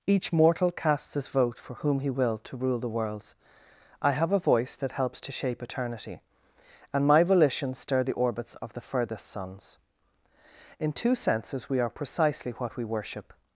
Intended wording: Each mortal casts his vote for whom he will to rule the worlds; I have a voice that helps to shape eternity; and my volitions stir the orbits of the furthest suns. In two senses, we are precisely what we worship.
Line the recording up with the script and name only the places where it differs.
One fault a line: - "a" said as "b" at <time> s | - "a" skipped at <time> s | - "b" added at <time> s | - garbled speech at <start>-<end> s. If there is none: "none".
none